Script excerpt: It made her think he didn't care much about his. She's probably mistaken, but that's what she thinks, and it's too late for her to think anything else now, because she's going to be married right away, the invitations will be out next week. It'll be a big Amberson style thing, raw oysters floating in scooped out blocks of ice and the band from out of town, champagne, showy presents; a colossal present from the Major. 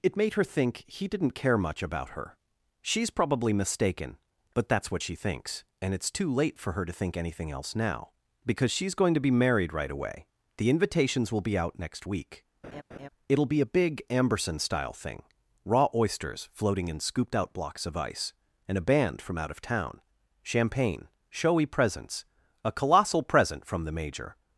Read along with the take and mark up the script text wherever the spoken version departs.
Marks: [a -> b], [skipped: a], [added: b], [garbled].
It made her think he didn't care much about [his. -> her] She's probably mistaken, but that's what she thinks, and it's too late for her to think anything else now, because she's going to be married right away, the invitations will be out next week. It'll be a big Amberson style thing, raw oysters floating in scooped out blocks of ice and [the -> a] band from out of town, champagne, showy presents; a colossal present from the Major.